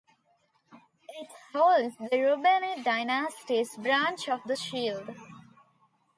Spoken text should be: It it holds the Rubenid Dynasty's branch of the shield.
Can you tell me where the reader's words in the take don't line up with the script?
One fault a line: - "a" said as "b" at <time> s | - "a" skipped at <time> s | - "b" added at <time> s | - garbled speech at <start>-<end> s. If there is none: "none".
- "it" skipped at 1.3 s